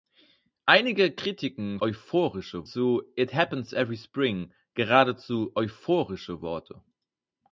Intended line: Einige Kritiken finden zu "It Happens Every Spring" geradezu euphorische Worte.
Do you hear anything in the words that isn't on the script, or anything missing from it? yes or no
yes